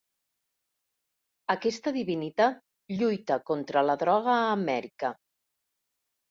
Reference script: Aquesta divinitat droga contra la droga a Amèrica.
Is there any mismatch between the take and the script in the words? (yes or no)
yes